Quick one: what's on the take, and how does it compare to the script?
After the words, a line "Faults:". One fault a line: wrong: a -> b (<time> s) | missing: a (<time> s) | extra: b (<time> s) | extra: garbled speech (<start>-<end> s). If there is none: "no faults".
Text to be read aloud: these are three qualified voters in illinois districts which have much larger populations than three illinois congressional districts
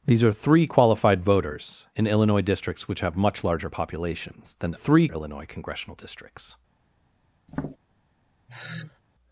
these are three qualified voters in illinois districts which have much larger populations than three illinois congressional districts
Faults:
no faults